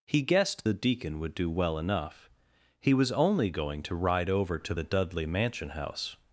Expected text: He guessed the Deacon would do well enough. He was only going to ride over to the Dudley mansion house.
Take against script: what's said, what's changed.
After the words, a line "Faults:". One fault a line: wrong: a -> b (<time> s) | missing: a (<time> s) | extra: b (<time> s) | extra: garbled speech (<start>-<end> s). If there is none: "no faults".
He guessed the Deacon would do well enough. He was only going to ride over to the Dudley mansion house.
Faults:
no faults